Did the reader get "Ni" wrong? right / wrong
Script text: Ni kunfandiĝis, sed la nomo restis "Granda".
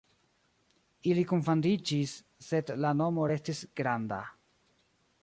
wrong